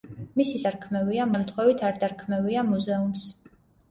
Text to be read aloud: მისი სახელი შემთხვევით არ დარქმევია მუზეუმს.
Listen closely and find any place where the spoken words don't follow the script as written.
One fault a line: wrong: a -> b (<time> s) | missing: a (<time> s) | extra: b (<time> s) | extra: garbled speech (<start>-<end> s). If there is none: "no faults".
wrong: სახელი -> დარქმევია (0.7 s)